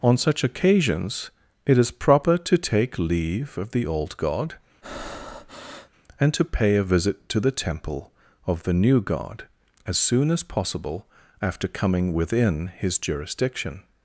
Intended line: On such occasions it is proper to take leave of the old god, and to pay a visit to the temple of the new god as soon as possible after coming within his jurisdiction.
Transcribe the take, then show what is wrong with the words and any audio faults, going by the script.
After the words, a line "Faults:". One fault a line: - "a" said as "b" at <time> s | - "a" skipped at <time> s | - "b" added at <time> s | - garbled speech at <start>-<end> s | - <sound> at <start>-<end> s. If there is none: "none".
On such occasions it is proper to take leave of the old god, and to pay a visit to the temple of the new god as soon as possible after coming within his jurisdiction.
Faults:
- breath at 4.8-5.9 s